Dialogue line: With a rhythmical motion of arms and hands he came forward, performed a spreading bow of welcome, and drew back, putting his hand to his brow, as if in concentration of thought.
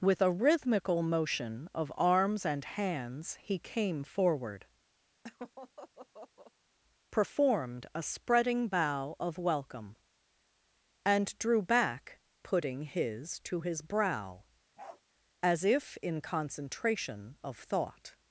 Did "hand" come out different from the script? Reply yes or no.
yes